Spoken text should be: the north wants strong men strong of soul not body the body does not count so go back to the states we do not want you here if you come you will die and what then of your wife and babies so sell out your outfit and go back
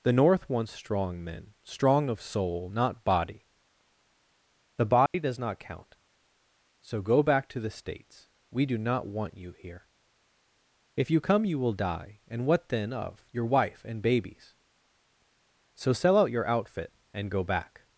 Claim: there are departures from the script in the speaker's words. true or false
false